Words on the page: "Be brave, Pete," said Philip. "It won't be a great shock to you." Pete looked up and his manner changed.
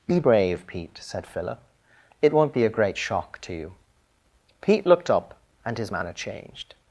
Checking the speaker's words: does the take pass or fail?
pass